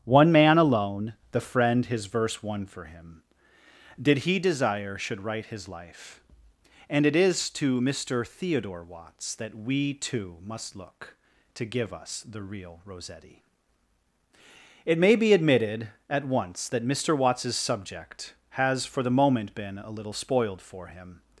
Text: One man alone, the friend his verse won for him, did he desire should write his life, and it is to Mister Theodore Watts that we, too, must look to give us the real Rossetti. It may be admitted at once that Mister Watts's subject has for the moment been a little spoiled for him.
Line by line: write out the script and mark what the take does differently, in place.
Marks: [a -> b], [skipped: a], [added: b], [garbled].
One man alone, the friend his verse won for him, did he desire should write his life, and it is to Mister Theodore Watts that we, too, must look to give us the real Rossetti. It may be admitted at once that Mister Watts's subject has for the moment been a little spoiled for him.